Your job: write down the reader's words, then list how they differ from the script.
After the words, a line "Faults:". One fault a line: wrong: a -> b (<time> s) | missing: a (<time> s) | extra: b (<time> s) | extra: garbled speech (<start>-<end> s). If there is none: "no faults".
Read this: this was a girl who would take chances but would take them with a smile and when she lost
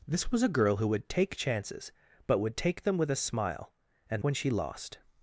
this was a girl who would take chances but would take them with a smile and when she lost
Faults:
no faults